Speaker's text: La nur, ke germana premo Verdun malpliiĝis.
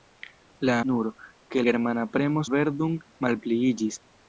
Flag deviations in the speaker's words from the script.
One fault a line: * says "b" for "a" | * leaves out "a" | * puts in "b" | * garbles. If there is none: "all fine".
all fine